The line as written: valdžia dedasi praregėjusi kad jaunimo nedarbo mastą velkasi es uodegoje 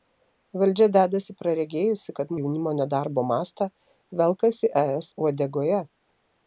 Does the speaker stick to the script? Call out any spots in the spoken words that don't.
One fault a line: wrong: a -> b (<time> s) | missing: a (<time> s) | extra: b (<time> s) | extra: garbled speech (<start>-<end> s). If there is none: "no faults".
no faults